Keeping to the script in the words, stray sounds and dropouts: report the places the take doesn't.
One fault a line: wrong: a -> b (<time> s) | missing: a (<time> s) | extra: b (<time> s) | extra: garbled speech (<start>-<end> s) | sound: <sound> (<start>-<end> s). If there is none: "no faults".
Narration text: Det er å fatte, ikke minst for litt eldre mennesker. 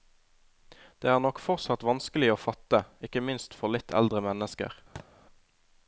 extra: nok fortsatt vanskelig (1.2 s)
sound: thud (5.0-5.1 s)